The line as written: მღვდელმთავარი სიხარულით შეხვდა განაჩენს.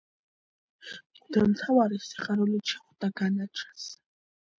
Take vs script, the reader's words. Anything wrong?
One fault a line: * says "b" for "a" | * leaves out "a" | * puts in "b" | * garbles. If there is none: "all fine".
all fine